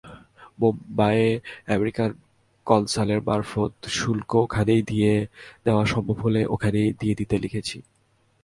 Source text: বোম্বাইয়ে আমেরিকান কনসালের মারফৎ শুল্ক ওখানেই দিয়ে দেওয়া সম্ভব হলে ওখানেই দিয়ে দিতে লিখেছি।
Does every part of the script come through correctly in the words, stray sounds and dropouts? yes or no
yes